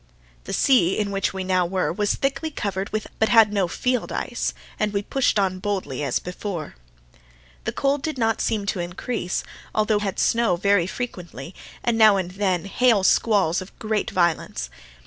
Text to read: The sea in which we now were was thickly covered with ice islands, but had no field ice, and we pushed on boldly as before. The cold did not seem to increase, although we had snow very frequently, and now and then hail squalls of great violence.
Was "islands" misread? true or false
true